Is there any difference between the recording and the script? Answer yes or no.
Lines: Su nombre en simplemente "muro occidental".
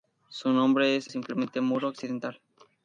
no